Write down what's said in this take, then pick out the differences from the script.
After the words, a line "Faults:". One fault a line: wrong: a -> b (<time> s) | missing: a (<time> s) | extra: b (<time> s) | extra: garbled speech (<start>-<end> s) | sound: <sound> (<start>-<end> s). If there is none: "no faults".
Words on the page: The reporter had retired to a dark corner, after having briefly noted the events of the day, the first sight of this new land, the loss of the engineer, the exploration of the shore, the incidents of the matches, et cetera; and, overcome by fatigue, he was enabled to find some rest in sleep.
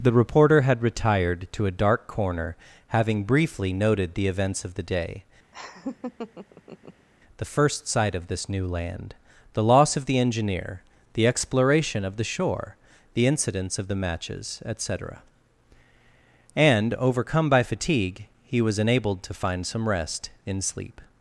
The reporter had retired to a dark corner, having briefly noted the events of the day, the first sight of this new land, the loss of the engineer, the exploration of the shore, the incidents of the matches, et cetera; and, overcome by fatigue, he was enabled to find some rest in sleep.
Faults:
missing: after (2.5 s)
sound: laugh (5.5-7.1 s)